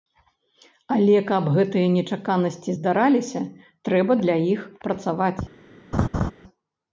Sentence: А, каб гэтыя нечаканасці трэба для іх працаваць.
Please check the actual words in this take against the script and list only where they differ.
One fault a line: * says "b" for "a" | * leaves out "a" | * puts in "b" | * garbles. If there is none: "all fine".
* says "Але" for "А"
* puts in "здараліся"